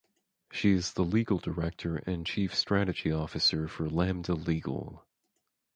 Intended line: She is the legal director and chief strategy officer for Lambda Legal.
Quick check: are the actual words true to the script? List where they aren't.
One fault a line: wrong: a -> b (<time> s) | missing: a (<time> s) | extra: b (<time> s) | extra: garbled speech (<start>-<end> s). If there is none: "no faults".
no faults